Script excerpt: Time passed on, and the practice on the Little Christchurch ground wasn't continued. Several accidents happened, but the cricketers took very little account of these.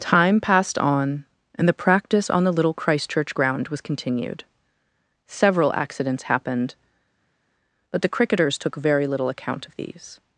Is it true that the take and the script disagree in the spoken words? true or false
true